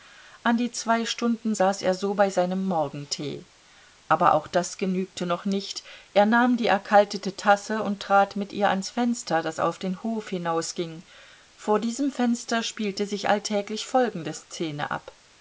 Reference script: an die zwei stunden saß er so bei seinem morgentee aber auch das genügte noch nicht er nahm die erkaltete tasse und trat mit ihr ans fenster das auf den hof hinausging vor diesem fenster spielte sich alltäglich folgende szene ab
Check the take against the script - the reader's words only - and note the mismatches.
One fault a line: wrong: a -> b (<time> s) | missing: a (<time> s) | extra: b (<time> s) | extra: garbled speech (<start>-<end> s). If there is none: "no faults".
no faults